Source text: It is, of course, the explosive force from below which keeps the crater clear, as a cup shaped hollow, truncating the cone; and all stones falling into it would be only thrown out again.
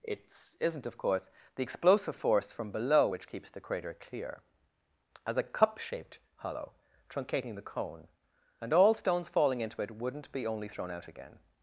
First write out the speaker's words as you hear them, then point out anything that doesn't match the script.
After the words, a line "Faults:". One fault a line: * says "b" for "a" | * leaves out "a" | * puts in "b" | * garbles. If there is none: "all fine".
It isn't, of course, the explosive force from below which keeps the crater clear, as a cup shaped hollow, truncating the cone; and all stones falling into it wouldn't be only thrown out again.
Faults:
* says "isn't" for "is"
* says "wouldn't" for "would"